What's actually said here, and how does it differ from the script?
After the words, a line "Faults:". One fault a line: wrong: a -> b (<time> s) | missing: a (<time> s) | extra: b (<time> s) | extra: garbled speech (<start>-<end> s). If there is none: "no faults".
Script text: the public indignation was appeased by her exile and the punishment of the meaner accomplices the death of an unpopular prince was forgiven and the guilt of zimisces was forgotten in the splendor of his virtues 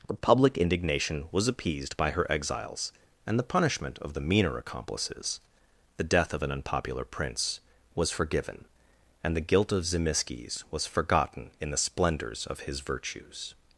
the public indignation was appeased by her exiles and the punishment of the meaner accomplices the death of an unpopular prince was forgiven and the guilt of zimisces was forgotten in the splendors of his virtues
Faults:
wrong: exile -> exiles (2.3 s)
wrong: splendor -> splendors (11.8 s)